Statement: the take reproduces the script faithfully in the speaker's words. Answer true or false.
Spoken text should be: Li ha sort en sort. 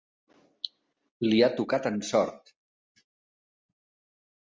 false